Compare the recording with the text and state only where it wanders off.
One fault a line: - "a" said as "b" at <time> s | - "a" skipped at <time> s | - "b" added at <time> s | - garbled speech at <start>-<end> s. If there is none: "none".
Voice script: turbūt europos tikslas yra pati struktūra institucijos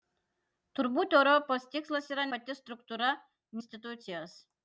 none